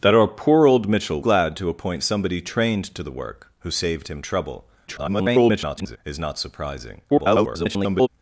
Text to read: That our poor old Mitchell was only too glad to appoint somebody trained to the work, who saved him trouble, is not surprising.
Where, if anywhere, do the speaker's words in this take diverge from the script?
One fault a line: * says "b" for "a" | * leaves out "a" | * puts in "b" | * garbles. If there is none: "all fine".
* leaves out "was only too"
* garbles
* garbles